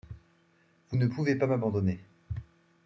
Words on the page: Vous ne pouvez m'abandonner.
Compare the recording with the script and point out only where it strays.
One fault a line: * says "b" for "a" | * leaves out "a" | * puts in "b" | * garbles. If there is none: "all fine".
* puts in "pas"